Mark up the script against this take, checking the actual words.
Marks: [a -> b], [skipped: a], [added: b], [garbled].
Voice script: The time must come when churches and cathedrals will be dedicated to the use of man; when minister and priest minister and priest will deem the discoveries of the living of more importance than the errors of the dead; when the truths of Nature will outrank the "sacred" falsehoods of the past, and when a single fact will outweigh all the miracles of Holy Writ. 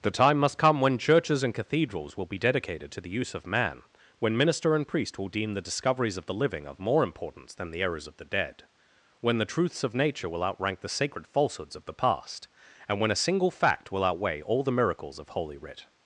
The time must come when churches and cathedrals will be dedicated to the use of man; when minister and priest [skipped: minister and priest] will deem the discoveries of the living of more importance than the errors of the dead; when the truths of Nature will outrank the "sacred" falsehoods of the past, and when a single fact will outweigh all the miracles of Holy Writ.